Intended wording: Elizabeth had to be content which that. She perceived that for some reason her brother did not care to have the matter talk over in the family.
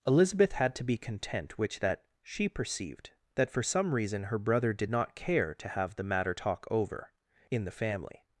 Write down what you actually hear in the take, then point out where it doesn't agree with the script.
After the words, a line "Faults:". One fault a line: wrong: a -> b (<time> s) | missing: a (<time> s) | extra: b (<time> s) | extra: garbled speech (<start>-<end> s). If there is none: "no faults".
Elizabeth had to be content which that. She perceived that for some reason her brother did not care to have the matter talk over in the family.
Faults:
no faults